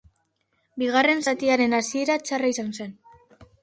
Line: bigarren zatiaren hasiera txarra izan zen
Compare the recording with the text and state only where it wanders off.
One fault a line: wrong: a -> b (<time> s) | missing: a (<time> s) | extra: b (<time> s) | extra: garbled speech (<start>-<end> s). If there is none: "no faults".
no faults